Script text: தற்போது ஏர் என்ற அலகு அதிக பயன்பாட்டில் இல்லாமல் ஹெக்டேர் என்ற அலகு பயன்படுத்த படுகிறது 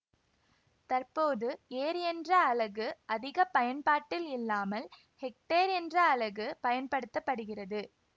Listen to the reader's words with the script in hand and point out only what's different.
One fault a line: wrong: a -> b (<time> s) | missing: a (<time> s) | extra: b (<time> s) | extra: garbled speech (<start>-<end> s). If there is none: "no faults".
no faults